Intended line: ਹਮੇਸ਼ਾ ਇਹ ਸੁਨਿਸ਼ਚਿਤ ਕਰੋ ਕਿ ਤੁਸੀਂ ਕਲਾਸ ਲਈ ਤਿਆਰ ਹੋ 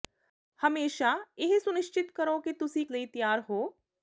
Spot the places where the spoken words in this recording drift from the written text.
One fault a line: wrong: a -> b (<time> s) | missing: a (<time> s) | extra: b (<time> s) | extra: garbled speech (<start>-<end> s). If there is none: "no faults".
missing: ਕਲਾਸ (2.9 s)